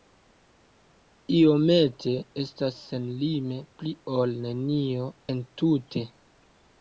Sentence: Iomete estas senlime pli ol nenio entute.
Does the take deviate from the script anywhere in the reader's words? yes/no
no